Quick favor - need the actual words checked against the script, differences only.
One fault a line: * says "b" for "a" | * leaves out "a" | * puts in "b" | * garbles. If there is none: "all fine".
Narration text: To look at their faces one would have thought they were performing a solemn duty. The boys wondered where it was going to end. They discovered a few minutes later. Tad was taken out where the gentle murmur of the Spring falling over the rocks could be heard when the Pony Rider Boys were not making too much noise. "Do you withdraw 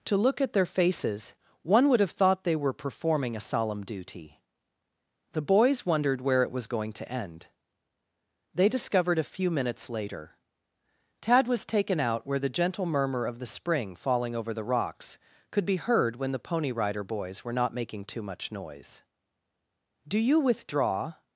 all fine